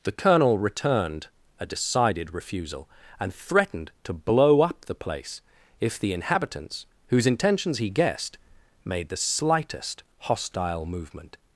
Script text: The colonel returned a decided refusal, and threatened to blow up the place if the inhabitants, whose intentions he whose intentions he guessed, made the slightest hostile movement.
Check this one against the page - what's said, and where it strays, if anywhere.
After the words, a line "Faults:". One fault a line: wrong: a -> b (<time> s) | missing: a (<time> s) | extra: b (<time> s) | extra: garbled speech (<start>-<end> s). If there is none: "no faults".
The colonel returned a decided refusal, and threatened to blow up the place if the inhabitants, whose intentions he guessed, made the slightest hostile movement.
Faults:
missing: whose intentions he (7.9 s)